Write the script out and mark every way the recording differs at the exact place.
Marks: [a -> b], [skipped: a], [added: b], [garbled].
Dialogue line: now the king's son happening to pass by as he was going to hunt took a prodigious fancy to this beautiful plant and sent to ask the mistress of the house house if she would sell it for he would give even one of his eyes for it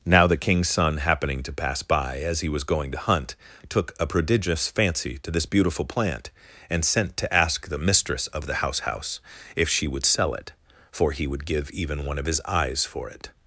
now the king's son happening to pass by as he was going to hunt took a prodigious fancy to this beautiful plant and sent to ask the mistress of the house house if she would sell it for he would give even one of his eyes for it